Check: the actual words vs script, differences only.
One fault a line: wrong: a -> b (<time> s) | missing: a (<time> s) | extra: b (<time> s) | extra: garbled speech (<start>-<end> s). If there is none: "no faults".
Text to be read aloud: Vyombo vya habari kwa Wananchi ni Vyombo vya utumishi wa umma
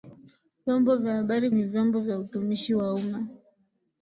missing: kwa Wananchi (1.5 s)